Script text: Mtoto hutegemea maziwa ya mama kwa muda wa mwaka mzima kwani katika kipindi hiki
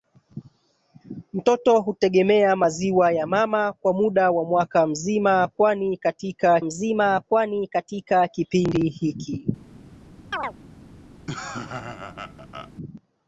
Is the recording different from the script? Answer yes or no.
yes